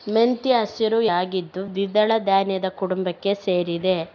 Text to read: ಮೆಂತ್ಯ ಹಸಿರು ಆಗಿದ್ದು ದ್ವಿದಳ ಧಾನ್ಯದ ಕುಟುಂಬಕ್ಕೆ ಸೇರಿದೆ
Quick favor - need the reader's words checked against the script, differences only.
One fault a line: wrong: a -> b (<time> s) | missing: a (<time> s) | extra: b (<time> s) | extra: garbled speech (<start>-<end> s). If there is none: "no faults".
no faults